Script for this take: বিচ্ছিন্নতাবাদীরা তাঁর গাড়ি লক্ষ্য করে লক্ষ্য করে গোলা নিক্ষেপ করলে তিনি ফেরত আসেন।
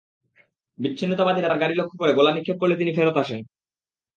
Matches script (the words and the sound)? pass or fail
fail